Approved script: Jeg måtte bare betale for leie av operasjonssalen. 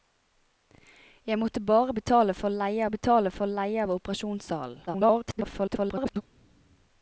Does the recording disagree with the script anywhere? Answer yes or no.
yes